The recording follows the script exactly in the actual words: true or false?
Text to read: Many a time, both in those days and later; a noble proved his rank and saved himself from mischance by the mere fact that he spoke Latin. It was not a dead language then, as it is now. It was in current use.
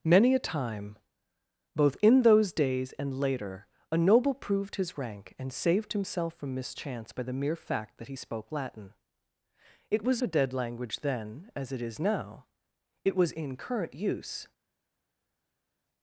false